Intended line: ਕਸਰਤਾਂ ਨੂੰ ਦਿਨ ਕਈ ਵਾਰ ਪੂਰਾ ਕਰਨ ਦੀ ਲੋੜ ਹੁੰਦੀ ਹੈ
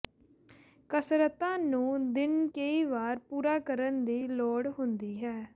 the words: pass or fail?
pass